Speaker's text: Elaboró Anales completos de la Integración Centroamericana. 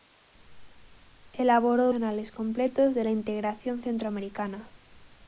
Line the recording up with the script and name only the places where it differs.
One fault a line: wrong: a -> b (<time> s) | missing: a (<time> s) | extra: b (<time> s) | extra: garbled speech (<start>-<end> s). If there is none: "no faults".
no faults